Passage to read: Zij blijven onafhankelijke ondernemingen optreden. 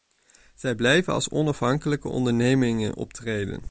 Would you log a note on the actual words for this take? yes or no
yes